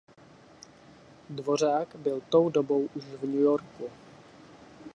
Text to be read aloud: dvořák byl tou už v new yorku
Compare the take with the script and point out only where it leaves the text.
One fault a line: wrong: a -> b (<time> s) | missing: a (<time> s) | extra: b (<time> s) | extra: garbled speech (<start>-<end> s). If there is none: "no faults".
extra: dobou (2.5 s)